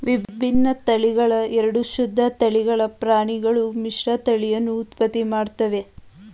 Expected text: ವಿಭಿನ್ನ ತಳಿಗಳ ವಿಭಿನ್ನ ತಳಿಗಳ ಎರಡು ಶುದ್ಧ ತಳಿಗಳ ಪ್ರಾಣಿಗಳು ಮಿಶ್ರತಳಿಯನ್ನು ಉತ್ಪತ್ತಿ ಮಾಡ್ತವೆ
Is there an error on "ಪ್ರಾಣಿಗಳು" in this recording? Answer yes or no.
no